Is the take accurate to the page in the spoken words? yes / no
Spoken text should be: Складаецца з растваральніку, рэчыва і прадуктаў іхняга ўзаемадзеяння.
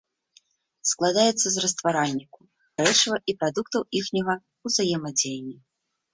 yes